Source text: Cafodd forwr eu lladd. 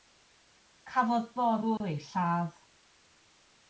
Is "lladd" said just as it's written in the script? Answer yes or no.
yes